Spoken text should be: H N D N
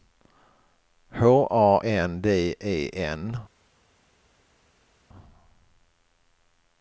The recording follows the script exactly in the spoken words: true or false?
false